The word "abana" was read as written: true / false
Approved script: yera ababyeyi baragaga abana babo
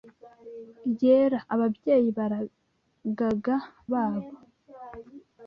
false